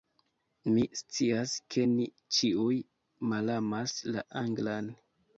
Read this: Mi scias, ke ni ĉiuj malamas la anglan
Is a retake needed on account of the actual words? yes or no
no